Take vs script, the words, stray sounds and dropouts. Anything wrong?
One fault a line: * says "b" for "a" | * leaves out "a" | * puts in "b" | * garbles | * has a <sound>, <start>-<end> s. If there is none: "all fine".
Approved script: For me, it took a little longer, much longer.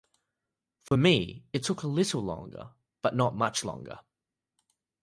* has a dropout, 0.9-0.9 s
* puts in "but not"